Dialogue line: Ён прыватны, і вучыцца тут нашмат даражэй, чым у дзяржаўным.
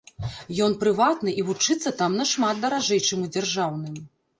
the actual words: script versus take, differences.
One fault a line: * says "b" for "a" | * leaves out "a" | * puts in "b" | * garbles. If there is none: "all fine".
* says "там" for "тут"